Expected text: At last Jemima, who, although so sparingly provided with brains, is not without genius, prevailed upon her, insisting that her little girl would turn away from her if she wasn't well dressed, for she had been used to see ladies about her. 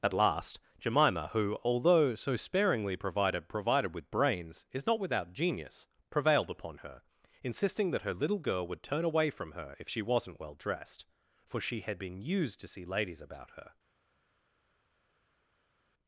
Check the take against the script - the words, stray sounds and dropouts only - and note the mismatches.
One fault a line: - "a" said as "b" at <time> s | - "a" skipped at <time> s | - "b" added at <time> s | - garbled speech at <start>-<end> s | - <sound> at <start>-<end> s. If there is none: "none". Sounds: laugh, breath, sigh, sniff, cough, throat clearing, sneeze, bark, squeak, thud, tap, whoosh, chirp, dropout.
- "provided" added at 3.5 s